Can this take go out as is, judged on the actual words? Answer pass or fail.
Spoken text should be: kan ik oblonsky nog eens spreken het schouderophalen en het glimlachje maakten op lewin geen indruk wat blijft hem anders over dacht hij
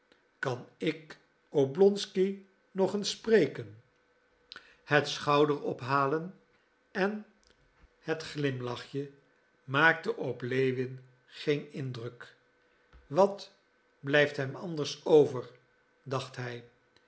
pass